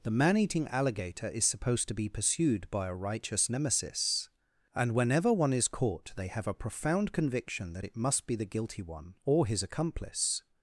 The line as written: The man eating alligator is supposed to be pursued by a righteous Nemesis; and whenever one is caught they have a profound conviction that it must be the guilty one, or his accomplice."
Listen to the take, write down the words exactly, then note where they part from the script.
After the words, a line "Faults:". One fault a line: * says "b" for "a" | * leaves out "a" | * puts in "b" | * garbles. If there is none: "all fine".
The man eating alligator is supposed to be pursued by a righteous Nemesis; and whenever one is caught they have a profound conviction that it must be the guilty one, or his accomplice."
Faults:
all fine